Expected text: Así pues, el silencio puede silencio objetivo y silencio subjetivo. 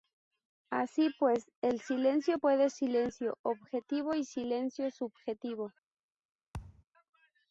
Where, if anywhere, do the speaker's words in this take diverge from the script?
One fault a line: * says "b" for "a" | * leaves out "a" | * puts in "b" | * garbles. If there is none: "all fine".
all fine